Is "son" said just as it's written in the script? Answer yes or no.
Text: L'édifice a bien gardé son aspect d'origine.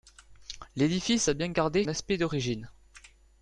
no